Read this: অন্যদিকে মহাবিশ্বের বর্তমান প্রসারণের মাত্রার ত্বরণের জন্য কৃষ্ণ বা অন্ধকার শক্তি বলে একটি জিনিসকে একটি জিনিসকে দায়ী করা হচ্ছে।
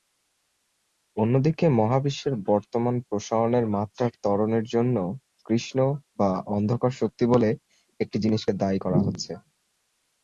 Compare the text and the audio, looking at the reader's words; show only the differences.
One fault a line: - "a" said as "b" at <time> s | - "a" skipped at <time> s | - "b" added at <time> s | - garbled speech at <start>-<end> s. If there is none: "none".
- "একটি জিনিসকে" skipped at 8.5 s